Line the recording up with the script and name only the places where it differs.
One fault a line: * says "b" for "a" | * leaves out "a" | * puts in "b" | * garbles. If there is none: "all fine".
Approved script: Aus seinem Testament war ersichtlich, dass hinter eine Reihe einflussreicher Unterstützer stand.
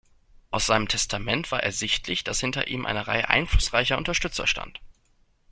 * puts in "ihm"